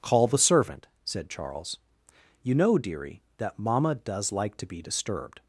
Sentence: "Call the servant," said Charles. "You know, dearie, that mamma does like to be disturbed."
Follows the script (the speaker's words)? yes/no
yes